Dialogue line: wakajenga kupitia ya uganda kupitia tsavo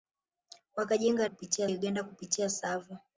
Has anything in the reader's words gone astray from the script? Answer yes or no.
no